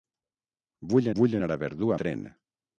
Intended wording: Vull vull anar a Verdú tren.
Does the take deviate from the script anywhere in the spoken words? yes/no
no